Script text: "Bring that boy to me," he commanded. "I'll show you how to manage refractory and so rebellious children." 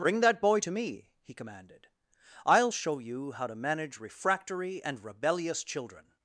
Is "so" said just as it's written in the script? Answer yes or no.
no